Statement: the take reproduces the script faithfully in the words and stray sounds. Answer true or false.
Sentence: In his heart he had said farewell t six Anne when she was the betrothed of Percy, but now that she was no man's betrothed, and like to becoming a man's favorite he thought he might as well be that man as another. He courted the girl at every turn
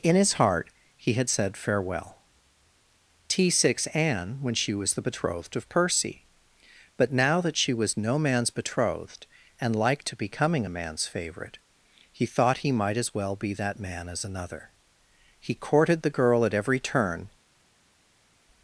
true